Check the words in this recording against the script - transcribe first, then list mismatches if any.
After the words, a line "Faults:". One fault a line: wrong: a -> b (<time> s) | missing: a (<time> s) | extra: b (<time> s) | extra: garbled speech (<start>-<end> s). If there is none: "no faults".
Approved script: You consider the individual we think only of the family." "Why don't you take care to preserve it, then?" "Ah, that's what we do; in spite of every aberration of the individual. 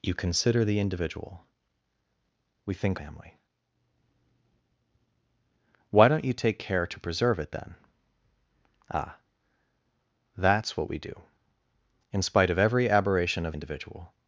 You consider the individual we think family." "Why don't you take care to preserve it, then?" "Ah, that's what we do; in spite of every aberration of individual.
Faults:
missing: only of the (3.0 s)
missing: the (13.5 s)